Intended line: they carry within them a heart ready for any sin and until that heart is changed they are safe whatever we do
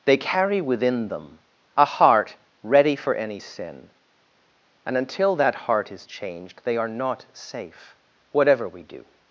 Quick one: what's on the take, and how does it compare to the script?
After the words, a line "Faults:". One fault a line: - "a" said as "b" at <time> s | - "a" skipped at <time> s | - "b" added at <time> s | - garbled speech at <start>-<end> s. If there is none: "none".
they carry within them a heart ready for any sin and until that heart is changed they are not safe whatever we do
Faults:
- "not" added at 6.9 s